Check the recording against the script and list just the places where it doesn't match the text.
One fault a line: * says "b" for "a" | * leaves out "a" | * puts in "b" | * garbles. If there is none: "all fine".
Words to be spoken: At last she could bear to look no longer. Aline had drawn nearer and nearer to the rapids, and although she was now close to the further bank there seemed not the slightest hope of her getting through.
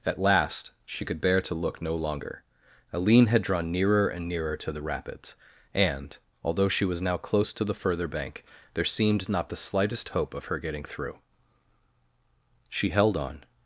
* puts in "She held on"